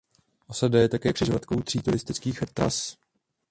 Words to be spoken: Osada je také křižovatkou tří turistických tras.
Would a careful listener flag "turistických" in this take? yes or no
no